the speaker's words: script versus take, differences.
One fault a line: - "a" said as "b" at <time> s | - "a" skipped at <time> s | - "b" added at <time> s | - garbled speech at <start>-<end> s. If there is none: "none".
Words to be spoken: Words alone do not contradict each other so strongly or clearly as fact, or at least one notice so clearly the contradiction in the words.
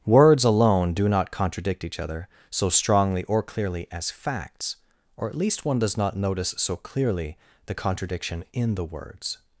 - "fact" said as "facts" at 4.1 s
- "does not" added at 5.8 s